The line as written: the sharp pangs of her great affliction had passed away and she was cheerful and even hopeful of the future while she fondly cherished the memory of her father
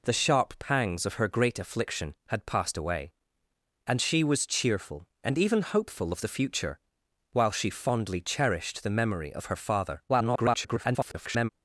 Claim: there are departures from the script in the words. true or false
true